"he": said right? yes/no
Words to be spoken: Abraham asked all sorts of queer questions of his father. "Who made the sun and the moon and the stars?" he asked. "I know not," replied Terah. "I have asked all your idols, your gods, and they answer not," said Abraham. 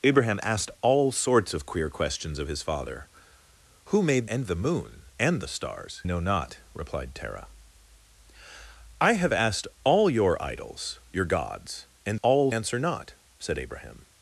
no